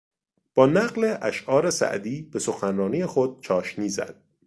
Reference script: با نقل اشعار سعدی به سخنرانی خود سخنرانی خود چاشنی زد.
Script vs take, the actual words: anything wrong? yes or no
yes